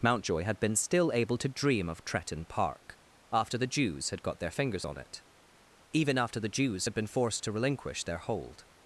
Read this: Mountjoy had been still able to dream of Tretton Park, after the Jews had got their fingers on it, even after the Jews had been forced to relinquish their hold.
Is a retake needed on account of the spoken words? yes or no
no